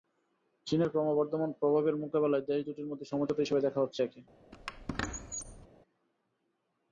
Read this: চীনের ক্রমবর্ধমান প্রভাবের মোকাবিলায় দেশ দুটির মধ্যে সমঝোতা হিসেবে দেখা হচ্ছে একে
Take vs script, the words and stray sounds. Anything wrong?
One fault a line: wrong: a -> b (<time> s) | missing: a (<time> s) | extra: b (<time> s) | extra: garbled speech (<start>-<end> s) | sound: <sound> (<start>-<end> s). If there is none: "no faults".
sound: squeak (4.5-5.7 s)